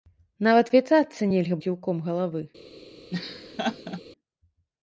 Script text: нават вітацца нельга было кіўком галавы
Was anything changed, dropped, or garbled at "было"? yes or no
yes